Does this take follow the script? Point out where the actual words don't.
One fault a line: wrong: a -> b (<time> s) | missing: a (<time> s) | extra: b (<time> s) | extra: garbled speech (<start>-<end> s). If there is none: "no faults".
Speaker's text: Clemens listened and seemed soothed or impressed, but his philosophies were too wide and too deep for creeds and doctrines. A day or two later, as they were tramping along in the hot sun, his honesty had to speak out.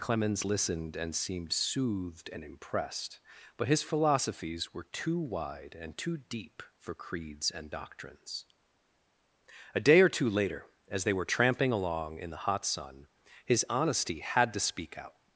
wrong: or -> and (2.3 s)